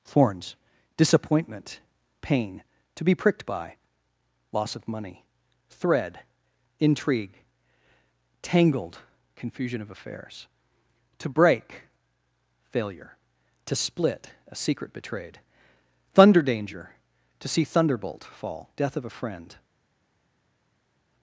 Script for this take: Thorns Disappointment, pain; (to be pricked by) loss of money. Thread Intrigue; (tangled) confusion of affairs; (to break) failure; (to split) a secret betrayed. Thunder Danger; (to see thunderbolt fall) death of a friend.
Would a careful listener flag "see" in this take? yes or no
no